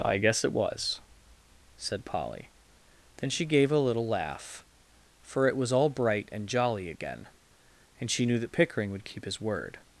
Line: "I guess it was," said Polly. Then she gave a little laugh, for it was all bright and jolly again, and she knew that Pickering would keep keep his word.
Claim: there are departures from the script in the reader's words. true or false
true